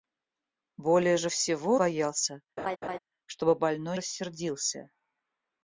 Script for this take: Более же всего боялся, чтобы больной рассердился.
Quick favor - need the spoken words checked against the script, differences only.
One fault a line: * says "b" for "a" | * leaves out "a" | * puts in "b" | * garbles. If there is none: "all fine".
all fine